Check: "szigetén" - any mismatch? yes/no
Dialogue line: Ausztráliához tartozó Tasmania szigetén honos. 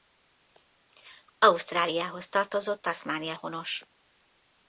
yes